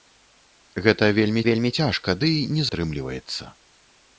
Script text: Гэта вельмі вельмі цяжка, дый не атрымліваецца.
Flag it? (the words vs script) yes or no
no